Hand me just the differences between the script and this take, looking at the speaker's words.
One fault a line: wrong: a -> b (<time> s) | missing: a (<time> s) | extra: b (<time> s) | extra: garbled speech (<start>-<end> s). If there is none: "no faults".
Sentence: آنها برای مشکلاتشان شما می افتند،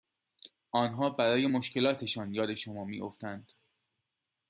extra: یاد (2.3 s)